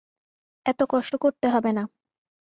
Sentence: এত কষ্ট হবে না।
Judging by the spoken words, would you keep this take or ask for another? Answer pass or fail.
fail